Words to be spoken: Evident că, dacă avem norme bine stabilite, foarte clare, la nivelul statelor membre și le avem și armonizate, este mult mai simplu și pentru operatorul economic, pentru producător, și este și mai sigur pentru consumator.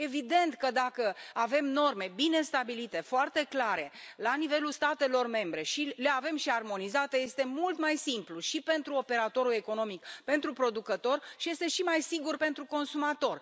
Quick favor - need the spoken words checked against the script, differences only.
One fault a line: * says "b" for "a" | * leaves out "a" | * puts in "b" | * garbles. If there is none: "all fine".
all fine